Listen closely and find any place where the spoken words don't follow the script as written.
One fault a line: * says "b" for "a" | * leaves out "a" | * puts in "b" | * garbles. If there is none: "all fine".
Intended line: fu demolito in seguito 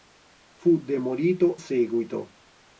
* leaves out "in"